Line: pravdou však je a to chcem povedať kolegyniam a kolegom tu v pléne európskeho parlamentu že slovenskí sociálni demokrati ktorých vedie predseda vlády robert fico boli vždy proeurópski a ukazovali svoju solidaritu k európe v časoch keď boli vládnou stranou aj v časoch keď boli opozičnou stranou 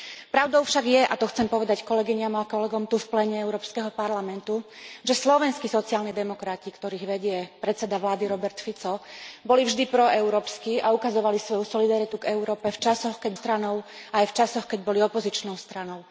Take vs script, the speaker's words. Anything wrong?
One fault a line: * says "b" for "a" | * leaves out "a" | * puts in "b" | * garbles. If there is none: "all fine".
* leaves out "boli vládnou"